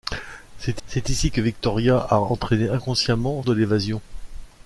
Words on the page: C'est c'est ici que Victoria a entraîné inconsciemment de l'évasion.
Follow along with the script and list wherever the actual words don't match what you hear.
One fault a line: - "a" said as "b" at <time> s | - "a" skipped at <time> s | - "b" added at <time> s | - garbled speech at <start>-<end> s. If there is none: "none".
none